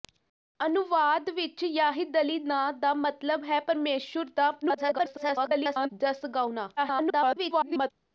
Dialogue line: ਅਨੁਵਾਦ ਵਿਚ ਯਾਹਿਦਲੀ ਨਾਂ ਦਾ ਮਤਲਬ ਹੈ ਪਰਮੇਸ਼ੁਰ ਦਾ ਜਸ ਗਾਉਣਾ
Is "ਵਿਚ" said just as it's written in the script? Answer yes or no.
yes